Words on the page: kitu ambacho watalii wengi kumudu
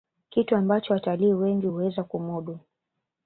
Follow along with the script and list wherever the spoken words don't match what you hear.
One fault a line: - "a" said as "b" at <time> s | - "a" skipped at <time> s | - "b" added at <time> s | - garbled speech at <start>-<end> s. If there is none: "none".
- "huweza" added at 1.7 s